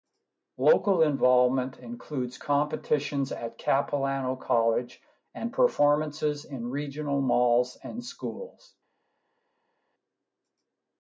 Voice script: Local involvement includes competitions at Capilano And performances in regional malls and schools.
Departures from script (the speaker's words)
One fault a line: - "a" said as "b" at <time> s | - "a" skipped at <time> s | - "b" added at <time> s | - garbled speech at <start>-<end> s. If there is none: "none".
- "College" added at 4.4 s